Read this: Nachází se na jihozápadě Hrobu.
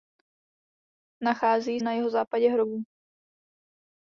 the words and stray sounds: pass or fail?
fail